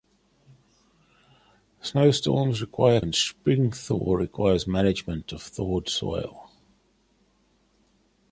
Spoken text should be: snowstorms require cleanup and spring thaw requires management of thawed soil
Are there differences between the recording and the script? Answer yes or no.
yes